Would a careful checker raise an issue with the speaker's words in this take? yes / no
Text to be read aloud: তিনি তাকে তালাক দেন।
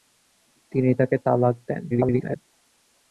yes